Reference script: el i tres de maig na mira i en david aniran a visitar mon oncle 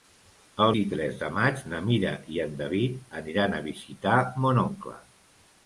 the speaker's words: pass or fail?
pass